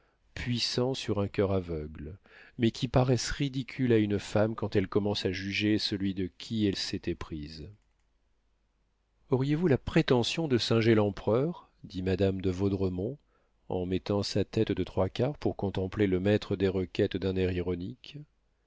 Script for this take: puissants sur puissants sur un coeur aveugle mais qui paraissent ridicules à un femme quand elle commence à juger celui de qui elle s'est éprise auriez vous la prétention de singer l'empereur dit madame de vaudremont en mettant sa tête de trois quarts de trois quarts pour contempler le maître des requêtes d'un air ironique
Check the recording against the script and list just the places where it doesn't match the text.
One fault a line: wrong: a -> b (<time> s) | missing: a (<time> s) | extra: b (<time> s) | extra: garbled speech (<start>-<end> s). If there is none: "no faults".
missing: puissants sur (1.2 s)
wrong: un -> une (4.0 s)
missing: de trois quarts (15.4 s)